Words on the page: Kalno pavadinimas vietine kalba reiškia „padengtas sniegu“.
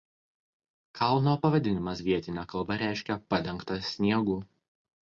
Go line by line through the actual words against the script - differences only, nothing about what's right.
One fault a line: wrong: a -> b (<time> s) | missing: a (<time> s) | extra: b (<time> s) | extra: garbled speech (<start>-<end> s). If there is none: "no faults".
no faults